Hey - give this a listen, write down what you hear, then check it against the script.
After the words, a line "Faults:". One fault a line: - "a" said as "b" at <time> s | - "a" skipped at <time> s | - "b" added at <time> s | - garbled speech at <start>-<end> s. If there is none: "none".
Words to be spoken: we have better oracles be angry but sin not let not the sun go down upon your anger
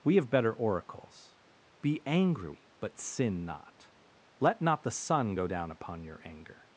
we have better oracles be angry but sin not let not the sun go down upon your anger
Faults:
none